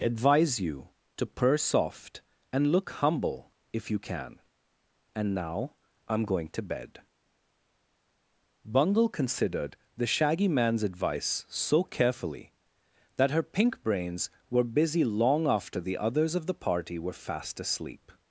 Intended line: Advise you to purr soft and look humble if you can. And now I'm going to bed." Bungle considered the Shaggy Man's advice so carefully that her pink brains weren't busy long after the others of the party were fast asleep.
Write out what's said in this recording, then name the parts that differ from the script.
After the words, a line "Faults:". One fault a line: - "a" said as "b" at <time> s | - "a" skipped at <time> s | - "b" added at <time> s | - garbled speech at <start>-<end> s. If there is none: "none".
Advise you to purr soft and look humble if you can. And now I'm going to bed." Bungle considered the Shaggy Man's advice so carefully that her pink brains were busy long after the others of the party were fast asleep.
Faults:
- "weren't" said as "were" at 14.5 s